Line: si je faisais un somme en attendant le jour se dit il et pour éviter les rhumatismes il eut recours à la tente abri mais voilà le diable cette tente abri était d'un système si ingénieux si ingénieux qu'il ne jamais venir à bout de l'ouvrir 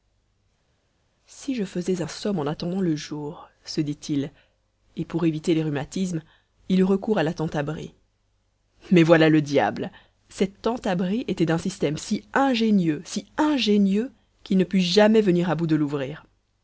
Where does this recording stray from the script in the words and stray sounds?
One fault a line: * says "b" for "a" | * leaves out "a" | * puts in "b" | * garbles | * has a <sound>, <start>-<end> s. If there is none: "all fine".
* puts in "put"